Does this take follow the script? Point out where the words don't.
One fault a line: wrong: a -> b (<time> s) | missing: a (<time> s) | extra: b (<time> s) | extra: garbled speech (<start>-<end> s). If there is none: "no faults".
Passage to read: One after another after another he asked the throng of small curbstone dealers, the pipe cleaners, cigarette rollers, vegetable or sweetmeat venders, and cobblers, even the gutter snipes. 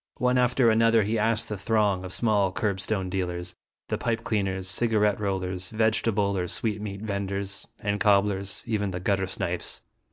missing: after another (1.0 s)